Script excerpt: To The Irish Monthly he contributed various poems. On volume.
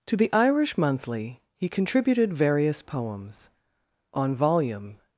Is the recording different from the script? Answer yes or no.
no